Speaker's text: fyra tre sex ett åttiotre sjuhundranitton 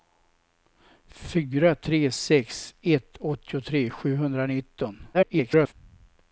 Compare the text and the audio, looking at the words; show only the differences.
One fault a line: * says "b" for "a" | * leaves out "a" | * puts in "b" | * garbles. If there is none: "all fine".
* garbles